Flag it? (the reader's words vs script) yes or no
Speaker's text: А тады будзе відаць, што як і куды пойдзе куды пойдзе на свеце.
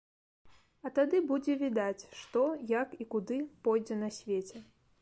yes